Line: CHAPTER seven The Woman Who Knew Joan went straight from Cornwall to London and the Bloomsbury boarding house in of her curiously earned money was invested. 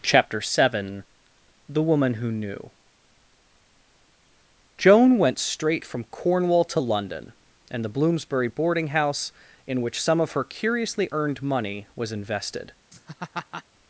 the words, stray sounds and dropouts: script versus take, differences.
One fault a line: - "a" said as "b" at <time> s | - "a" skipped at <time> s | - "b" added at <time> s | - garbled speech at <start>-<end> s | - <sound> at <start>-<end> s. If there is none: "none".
- "which some" added at 9.8 s
- laugh at 12.9-13.6 s